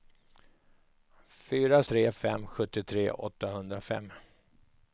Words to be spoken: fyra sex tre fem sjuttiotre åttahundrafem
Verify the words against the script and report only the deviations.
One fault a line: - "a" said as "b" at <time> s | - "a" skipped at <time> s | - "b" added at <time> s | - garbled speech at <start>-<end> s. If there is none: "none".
- "sex" skipped at 1.8 s